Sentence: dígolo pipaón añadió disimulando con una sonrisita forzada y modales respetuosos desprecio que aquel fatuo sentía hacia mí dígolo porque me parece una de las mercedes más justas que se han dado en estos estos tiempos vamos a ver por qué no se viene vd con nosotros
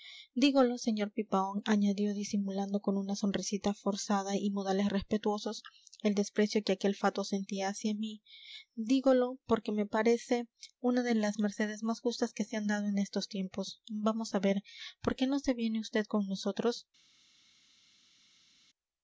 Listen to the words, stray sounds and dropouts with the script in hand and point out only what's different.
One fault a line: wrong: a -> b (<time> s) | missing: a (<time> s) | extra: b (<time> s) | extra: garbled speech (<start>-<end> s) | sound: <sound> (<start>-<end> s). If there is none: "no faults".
extra: sr (0.8 s)
extra: el (6.0 s)
missing: estos (13.3 s)